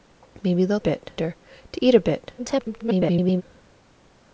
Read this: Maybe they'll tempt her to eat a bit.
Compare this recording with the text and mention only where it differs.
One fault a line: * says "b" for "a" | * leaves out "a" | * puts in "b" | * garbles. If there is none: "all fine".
* says "bit" for "tempt"
* garbles